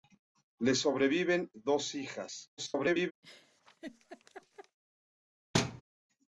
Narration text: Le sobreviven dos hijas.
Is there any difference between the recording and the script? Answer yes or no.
yes